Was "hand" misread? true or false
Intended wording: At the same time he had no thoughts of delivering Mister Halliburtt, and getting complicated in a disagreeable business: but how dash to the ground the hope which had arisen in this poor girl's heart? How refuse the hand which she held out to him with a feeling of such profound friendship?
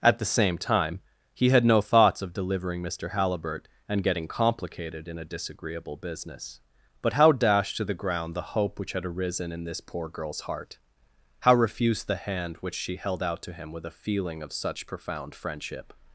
false